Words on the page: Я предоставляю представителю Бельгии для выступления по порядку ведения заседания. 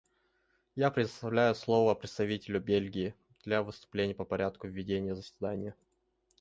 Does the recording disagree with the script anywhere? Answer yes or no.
yes